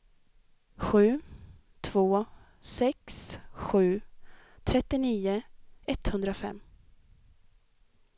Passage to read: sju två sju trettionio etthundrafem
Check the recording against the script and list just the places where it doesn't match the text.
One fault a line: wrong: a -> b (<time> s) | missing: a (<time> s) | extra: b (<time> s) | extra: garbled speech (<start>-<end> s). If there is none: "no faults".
extra: sex (2.6 s)